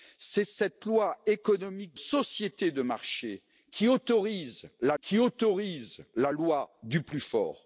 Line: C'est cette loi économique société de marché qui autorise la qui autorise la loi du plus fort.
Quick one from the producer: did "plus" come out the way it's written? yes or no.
yes